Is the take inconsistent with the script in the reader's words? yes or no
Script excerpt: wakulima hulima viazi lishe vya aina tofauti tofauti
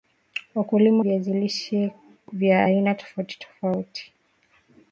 yes